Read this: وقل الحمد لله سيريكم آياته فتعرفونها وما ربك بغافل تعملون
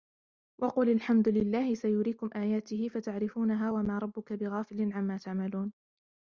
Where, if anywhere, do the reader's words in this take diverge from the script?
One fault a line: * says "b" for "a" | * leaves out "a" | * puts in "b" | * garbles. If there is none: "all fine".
* puts in "عما"